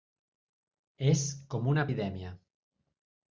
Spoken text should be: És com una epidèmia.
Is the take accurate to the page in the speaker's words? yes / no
yes